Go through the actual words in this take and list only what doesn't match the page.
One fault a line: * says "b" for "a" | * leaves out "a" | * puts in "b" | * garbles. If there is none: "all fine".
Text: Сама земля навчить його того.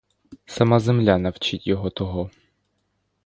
all fine